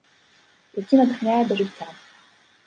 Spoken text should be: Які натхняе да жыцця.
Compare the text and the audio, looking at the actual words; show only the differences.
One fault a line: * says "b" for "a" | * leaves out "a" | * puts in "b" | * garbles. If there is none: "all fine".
all fine